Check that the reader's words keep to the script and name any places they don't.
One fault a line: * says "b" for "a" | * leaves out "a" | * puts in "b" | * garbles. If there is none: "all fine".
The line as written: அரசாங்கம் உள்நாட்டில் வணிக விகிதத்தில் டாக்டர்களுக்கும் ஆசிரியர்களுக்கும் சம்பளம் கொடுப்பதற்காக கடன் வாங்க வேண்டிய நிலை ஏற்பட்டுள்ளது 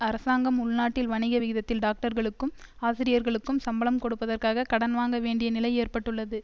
all fine